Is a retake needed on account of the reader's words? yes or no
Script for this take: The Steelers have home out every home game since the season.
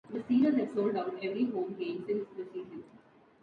yes